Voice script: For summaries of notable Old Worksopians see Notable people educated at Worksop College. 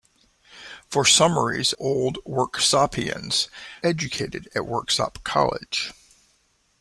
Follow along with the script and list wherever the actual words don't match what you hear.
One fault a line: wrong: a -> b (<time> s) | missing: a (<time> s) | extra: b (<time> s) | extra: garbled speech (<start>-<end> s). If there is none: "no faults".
missing: of notable (1.7 s)
missing: see Notable people (3.5 s)